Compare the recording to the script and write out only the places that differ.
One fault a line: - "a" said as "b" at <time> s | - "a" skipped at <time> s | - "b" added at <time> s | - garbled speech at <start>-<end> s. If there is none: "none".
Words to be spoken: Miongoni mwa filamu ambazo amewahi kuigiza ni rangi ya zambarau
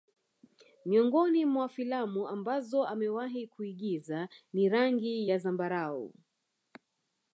none